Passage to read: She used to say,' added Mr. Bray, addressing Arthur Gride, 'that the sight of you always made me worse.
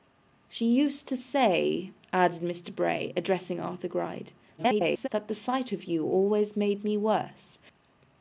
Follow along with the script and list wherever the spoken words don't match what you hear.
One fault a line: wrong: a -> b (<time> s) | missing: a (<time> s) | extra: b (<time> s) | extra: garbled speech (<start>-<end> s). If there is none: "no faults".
extra: garbled speech (4.6-5.1 s)